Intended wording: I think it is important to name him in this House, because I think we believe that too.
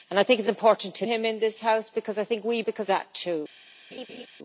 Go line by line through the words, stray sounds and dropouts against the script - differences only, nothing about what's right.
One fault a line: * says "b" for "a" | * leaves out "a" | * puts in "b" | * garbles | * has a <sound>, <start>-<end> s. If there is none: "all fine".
* leaves out "name"
* says "because" for "believe"
* has a laugh, 3.9-4.3 s